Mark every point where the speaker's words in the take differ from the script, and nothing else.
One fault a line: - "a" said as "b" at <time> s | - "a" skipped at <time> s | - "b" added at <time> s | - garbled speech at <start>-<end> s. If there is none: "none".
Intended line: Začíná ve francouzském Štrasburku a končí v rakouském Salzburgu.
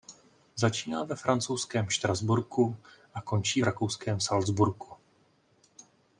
none